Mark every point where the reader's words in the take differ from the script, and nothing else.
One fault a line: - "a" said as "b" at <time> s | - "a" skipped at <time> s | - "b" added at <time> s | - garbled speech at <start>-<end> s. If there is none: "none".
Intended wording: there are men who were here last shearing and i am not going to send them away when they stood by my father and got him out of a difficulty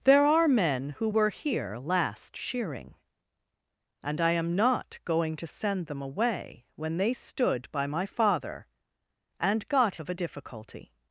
- "him out" skipped at 10.0 s